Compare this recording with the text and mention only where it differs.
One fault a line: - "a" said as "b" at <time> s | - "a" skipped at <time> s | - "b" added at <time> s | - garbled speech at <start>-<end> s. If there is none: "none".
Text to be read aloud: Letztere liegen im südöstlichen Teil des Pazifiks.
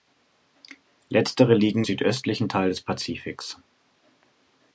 - "im" skipped at 1.9 s